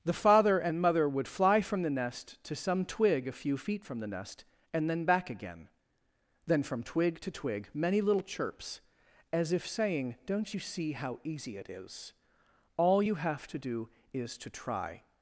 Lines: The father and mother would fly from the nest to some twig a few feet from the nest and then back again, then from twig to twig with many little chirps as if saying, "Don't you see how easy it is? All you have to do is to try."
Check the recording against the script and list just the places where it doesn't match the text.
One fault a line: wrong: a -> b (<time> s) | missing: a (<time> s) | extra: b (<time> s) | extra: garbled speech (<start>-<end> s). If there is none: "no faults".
missing: with (7.7 s)